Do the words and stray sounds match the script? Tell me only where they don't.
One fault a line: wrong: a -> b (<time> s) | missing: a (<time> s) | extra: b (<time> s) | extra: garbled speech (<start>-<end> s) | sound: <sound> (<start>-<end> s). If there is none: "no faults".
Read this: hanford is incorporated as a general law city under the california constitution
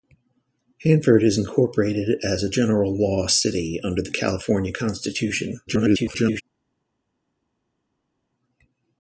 extra: garbled speech (5.7-6.4 s)